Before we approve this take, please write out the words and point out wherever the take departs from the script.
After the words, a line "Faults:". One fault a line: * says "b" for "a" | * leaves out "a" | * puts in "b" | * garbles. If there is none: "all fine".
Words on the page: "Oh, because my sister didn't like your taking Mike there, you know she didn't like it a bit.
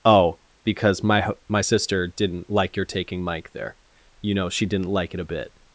"Oh, because my my sister didn't like your taking Mike there, you know she didn't like it a bit.
Faults:
* puts in "my"